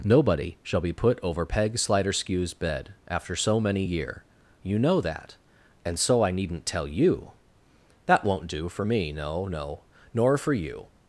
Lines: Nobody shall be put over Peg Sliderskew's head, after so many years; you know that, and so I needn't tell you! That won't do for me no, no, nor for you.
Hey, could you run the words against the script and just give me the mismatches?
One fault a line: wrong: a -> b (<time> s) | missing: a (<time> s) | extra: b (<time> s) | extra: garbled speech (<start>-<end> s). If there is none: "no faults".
wrong: head -> bed (2.5 s)
wrong: years -> year (3.8 s)